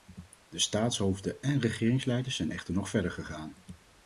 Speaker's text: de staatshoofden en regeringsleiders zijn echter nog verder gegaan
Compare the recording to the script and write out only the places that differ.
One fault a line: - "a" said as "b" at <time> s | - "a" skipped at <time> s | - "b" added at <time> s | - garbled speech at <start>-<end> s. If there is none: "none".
none